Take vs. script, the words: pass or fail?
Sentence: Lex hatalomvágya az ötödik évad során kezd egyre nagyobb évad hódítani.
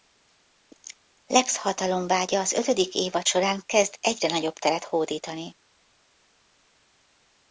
fail